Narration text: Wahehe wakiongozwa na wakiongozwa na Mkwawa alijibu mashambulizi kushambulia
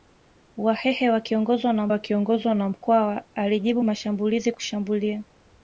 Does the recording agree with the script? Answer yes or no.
yes